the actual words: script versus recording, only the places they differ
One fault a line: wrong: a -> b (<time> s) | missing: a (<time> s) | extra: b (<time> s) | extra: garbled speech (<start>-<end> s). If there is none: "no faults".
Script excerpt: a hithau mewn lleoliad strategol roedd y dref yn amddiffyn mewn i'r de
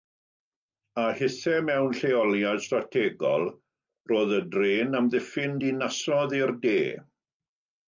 wrong: mewn -> dinasoedd (5.7 s)